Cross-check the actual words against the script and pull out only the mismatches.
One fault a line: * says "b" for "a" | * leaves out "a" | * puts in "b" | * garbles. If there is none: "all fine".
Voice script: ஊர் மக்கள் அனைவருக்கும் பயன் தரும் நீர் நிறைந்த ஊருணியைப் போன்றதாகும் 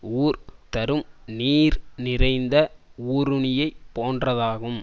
* leaves out "மக்கள் அனைவருக்கும் பயன்"